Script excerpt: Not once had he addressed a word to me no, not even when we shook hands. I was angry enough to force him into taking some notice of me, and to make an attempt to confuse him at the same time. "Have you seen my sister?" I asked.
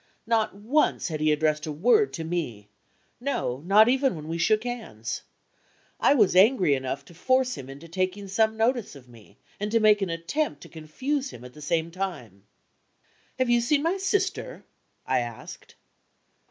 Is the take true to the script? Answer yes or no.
yes